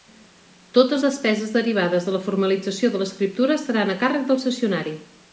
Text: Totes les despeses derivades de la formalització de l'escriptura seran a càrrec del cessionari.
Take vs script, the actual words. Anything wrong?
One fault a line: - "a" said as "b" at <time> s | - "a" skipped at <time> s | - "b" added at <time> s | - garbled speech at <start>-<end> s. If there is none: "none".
- "les" skipped at 1.0 s